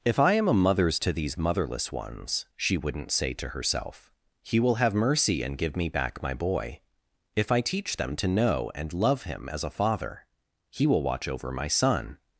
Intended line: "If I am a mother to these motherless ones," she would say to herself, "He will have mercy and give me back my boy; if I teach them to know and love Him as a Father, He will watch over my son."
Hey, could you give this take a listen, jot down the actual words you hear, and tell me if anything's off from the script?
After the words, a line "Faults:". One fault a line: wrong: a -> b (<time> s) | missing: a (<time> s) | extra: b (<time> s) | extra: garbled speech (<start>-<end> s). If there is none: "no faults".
"If I am a mothers to these motherless ones," she wouldn't say to herself, "He will have mercy and give me back my boy; if I teach them to know and love Him as a Father, He will watch over my son."
Faults:
wrong: mother -> mothers (0.5 s)
wrong: would -> wouldn't (2.8 s)